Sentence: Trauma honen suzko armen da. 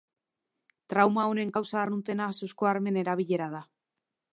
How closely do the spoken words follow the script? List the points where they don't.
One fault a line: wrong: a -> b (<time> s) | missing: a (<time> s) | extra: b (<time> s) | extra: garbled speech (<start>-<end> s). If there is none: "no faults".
extra: kausa arruntena (1.6 s)
extra: erabilera (3.1 s)